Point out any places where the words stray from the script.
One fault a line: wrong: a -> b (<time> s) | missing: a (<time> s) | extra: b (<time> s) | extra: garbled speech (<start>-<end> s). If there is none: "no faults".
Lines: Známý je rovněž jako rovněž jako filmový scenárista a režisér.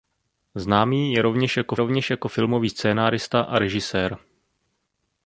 no faults